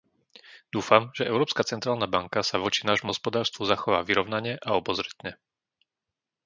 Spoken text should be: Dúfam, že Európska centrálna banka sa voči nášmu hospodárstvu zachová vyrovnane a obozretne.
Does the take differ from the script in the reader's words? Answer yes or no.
no